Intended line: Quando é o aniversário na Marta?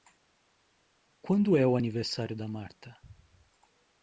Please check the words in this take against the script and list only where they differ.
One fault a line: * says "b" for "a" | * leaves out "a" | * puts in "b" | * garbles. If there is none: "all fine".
* says "da" for "na"